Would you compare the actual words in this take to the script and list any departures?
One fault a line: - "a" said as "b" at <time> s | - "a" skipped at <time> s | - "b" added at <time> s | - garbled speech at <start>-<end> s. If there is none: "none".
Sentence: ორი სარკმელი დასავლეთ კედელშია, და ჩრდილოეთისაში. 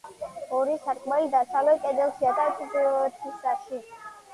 none